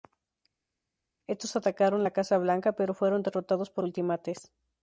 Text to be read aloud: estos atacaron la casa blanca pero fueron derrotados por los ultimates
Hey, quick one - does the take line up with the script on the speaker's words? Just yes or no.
no